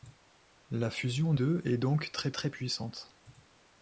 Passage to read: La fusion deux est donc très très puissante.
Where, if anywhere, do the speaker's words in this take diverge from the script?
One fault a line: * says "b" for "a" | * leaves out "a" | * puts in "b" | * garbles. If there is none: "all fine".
all fine